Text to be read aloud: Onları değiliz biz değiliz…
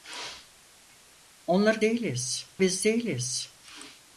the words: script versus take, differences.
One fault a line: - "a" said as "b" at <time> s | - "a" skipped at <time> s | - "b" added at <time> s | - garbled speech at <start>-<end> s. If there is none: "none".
none